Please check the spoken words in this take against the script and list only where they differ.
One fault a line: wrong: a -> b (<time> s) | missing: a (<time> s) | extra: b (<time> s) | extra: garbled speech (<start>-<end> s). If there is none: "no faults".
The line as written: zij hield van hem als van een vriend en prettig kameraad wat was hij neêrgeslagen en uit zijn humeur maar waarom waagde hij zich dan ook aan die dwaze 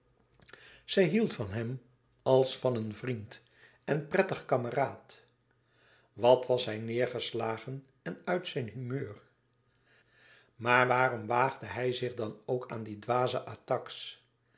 no faults